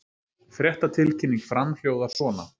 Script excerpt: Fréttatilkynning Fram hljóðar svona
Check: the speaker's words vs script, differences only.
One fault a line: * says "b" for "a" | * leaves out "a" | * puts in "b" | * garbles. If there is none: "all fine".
all fine